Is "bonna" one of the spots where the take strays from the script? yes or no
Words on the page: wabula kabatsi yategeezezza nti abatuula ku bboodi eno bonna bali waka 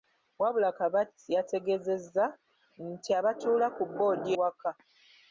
yes